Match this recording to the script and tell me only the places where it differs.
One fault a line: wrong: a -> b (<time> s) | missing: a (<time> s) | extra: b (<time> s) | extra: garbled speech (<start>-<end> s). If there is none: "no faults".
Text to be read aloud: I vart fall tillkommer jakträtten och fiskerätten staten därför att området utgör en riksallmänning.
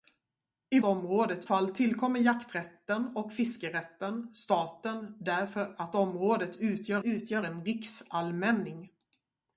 wrong: vart -> området (0.8 s)
extra: utgör (7.0 s)